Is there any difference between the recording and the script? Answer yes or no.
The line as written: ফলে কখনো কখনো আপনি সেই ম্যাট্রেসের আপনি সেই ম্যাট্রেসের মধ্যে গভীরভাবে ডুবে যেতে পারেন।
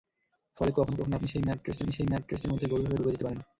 no